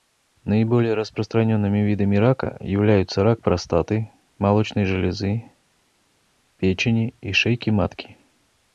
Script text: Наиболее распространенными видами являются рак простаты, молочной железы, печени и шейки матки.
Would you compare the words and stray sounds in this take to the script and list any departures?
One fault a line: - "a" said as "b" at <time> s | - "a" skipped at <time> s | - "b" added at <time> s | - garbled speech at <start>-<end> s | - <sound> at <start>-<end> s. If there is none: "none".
- "рака" added at 2.1 s